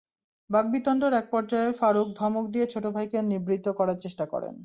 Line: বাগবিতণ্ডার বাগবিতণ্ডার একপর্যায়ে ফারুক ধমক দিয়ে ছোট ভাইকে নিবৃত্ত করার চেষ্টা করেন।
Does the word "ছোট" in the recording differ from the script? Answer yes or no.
no